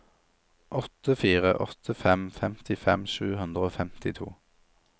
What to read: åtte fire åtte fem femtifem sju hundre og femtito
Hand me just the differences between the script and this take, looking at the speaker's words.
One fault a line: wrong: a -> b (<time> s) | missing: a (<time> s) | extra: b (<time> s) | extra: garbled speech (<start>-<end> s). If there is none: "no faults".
no faults